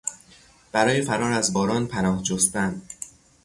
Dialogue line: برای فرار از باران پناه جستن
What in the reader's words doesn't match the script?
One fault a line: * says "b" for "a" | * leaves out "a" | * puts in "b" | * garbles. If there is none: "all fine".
all fine